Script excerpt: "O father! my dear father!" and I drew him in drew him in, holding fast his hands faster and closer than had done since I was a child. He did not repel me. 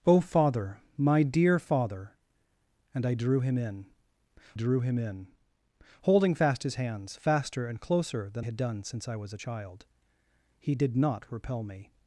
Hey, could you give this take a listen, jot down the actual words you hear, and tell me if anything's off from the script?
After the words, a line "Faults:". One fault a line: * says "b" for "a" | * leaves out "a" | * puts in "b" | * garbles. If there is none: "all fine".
"O father! my dear father!" and I drew him in drew him in, holding fast his hands faster and closer than had done since I was a child. He did not repel me.
Faults:
all fine